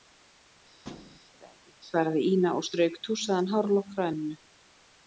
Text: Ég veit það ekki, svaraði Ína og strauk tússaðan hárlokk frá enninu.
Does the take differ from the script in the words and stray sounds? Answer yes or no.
yes